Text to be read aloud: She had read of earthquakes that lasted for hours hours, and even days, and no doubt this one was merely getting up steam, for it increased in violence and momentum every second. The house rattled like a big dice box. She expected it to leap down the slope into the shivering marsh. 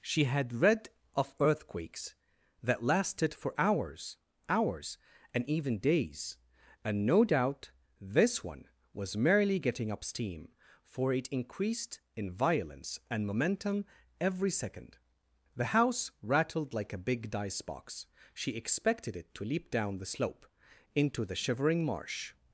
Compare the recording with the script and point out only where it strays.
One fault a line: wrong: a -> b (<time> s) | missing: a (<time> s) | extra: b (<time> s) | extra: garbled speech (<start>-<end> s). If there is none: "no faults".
no faults